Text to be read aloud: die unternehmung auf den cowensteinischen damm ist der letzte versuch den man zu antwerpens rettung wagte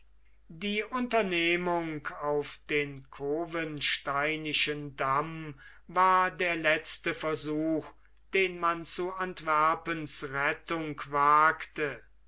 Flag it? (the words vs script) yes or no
yes